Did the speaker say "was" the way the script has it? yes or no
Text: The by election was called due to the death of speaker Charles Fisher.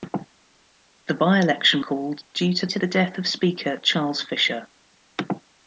no